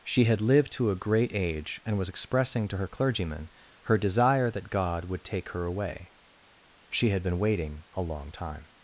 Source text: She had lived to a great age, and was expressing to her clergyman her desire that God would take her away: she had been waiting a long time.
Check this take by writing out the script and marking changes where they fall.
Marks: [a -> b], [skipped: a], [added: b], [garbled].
She had lived to a great age, and was expressing to her clergyman her desire that God would take her away: she had been waiting a long time.